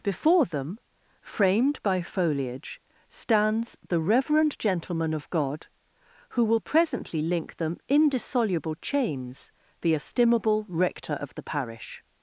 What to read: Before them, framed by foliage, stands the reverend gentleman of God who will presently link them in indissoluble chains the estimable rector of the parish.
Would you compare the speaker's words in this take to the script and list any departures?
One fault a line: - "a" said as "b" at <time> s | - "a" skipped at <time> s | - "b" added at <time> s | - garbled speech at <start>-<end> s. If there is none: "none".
- "in" skipped at 7.8 s